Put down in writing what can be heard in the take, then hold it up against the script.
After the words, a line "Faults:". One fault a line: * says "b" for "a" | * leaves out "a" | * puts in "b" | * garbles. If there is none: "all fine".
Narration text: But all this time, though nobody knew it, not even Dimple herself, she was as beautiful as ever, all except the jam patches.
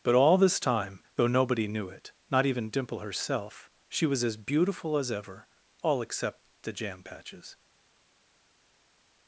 But all this time, though nobody knew it, not even Dimple herself, she was as beautiful as ever, all except the jam patches.
Faults:
all fine